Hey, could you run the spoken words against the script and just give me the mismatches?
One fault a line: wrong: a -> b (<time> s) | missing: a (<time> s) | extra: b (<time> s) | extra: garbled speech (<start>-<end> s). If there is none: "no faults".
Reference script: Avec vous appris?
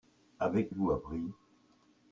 no faults